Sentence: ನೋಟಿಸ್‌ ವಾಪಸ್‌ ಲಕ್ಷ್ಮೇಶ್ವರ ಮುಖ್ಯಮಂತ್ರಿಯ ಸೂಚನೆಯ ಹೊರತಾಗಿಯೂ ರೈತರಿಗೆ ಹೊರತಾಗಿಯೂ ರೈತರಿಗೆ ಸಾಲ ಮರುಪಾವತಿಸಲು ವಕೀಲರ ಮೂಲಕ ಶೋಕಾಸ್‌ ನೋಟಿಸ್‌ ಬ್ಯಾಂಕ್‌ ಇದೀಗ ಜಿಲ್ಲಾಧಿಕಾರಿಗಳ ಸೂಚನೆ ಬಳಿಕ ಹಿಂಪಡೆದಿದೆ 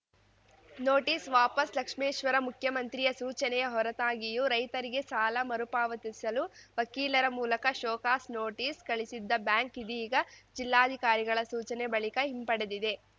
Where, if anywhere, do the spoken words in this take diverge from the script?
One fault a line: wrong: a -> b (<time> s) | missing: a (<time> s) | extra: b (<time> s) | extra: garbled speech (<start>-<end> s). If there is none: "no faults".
missing: ಹೊರತಾಗಿಯೂ ರೈತರಿಗೆ (5.0 s)
extra: ಕಳಿಸಿದ್ದ (8.9 s)